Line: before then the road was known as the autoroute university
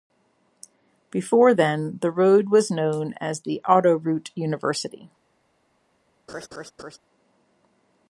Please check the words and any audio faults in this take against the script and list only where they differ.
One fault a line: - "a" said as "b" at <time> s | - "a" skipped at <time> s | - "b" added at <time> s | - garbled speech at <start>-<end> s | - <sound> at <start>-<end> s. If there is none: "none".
- laugh at 6.3-7.0 s